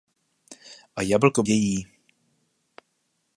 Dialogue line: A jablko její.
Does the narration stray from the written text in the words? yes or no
no